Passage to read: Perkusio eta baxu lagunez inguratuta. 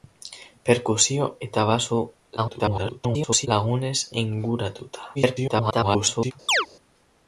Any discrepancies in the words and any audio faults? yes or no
yes